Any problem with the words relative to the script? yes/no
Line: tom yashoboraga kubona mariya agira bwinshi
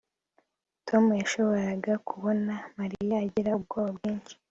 yes